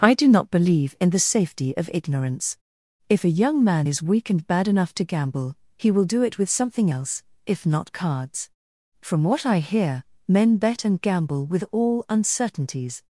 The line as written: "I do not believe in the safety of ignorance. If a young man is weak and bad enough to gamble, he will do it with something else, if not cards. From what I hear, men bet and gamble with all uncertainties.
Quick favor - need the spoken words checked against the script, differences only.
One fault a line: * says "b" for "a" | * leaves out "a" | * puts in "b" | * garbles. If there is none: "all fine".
all fine